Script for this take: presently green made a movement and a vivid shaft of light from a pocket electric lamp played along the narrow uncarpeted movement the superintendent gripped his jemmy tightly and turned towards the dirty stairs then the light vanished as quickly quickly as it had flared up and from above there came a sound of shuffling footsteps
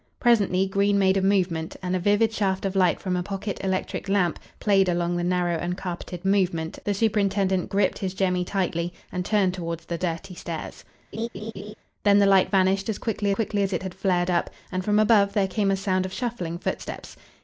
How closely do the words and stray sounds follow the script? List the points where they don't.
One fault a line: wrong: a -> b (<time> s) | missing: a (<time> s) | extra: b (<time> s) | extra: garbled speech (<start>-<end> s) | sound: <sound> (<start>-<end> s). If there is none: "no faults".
sound: laugh (11.1-11.7 s)